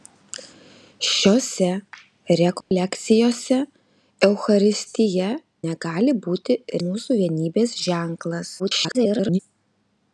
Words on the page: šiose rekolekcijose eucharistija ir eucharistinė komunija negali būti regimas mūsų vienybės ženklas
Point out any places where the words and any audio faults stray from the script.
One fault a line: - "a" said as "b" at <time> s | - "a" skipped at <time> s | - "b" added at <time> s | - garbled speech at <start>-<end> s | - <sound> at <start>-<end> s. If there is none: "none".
- dropout at 2.6-2.7 s
- "ir eucharistinė komunija" skipped at 5.3 s
- "regimas" skipped at 6.6 s
- garbled speech at 8.6-9.4 s